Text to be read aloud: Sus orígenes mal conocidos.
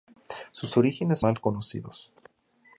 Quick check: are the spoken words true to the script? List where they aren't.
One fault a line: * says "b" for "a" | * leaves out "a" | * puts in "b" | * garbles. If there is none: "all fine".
all fine